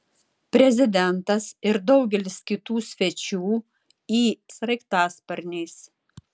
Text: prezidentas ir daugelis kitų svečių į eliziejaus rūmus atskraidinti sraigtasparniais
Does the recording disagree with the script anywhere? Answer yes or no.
yes